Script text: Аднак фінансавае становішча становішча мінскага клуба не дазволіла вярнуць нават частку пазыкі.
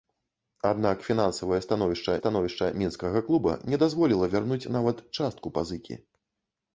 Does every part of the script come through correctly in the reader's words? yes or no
yes